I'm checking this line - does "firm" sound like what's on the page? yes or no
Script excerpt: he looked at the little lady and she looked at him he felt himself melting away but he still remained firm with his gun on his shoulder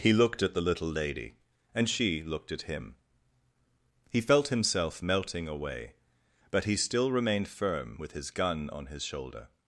yes